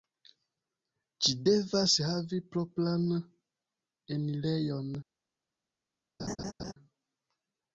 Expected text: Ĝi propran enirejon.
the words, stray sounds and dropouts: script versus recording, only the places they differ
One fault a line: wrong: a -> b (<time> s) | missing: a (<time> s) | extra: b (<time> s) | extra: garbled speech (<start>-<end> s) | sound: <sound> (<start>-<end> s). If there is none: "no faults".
extra: devas havi (1.5 s)
sound: laugh (6.2-6.7 s)